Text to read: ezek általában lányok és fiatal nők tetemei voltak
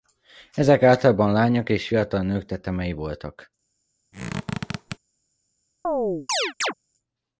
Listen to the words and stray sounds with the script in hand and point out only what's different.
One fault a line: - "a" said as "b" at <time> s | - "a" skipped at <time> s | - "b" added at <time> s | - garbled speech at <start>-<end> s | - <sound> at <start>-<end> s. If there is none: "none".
- squeak at 4.1-5.0 s
- chirp at 5.8-6.7 s